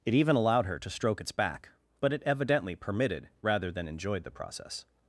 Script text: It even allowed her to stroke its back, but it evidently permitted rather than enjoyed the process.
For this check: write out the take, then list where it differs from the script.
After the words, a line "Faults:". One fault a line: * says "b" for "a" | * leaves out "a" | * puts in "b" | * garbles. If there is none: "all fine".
It even allowed her to stroke its back, but it evidently permitted rather than enjoyed the process.
Faults:
all fine